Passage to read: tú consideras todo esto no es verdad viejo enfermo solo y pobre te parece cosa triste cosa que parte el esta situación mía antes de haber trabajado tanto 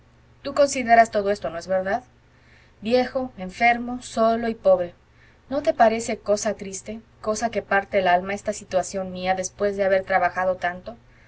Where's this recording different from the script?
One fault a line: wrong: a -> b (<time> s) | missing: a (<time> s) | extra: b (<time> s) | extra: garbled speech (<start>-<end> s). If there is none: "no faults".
extra: no (5.5 s)
extra: alma (8.1 s)
wrong: antes -> después (9.3 s)